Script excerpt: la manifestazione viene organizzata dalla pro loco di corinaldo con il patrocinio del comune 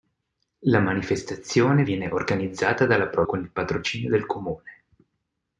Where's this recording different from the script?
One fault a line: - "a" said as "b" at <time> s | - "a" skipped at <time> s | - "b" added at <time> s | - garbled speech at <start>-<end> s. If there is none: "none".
- "loco di corinaldo" skipped at 3.2 s